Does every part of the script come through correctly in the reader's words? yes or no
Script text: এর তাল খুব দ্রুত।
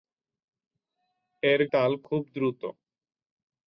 yes